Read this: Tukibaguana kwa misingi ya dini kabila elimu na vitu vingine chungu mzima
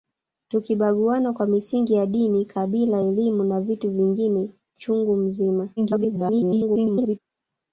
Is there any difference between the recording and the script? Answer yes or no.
yes